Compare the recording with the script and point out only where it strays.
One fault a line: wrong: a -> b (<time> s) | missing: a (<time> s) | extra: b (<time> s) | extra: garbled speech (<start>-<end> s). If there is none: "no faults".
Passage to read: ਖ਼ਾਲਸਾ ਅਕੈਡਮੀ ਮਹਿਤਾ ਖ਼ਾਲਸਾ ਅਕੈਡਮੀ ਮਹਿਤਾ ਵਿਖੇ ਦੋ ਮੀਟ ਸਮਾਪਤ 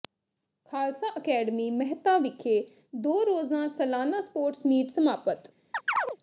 wrong: ਖ਼ਾਲਸਾ ਅਕੈਡਮੀ ਮਹਿਤਾ ਵਿਖੇ ਦੋ -> ਵਿਖੇ ਦੋ ਰੋਜ਼ਾ ਸਾਲਾਨਾ ਸਪੋਰਟਸ (2.2 s)